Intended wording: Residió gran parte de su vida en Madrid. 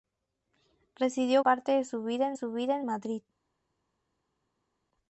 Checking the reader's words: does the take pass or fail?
fail